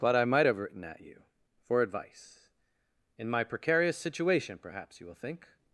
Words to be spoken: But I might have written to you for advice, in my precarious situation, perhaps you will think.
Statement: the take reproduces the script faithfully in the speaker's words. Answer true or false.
false